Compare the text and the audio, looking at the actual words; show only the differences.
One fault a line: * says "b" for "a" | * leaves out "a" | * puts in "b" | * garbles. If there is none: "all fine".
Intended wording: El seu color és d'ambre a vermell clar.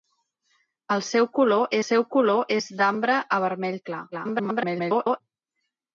* puts in "seu color"
* garbles